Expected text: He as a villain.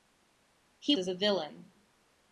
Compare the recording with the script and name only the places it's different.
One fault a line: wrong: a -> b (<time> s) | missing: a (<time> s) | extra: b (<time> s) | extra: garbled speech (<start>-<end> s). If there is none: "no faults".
no faults